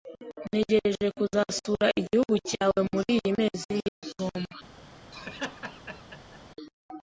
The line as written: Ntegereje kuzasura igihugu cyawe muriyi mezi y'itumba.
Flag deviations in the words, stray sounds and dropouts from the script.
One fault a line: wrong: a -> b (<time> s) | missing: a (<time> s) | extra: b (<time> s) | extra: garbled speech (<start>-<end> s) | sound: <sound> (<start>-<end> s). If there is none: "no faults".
sound: dropout (3.9-4.0 s)
sound: laugh (5.1-6.4 s)